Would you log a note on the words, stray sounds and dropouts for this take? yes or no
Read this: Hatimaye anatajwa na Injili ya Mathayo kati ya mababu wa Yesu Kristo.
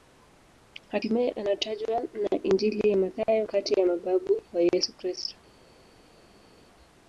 no